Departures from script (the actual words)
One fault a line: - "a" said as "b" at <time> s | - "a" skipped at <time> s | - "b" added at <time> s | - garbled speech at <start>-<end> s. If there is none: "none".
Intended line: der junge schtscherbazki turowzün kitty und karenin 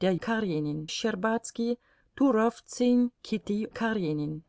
- "junge" said as "karenin" at 0.2 s
- "und" skipped at 3.6 s